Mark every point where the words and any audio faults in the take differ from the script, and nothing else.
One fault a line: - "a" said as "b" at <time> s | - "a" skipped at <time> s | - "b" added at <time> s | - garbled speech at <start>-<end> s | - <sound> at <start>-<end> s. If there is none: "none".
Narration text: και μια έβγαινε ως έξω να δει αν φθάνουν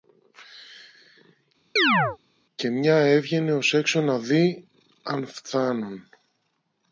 - chirp at 1.8-2.2 s